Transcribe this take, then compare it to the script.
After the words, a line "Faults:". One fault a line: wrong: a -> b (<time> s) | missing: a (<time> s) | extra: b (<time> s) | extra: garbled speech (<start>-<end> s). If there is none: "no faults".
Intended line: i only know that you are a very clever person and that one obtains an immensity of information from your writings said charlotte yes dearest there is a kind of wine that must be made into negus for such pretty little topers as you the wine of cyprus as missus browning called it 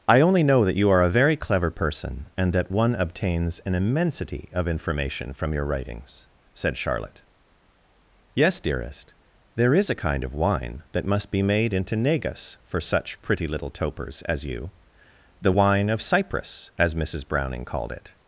i only know that you are a very clever person and that one obtains an immensity of information from your writings said charlotte yes dearest there is a kind of wine that must be made into negus for such pretty little topers as you the wine of cyprus as missus browning called it
Faults:
no faults